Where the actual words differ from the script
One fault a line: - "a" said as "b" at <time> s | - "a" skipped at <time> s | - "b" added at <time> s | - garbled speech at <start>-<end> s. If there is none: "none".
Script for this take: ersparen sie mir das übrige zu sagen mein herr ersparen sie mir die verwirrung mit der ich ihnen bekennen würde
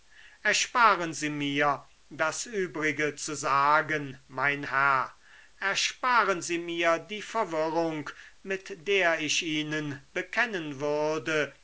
none